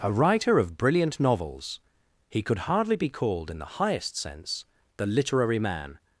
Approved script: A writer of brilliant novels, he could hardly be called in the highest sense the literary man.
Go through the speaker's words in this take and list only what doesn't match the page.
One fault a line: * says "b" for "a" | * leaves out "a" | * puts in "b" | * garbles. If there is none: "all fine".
all fine